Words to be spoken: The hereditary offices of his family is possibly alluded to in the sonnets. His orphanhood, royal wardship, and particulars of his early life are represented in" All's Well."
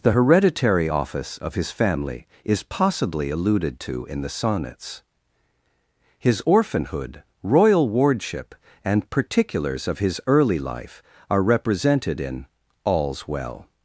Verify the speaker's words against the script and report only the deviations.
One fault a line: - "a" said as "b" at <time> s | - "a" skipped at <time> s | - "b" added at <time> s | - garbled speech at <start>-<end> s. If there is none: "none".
- "offices" said as "office" at 0.9 s